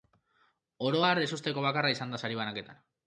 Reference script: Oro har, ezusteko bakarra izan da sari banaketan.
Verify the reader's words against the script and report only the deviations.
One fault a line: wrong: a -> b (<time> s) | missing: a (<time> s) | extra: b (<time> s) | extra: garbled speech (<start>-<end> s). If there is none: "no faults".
no faults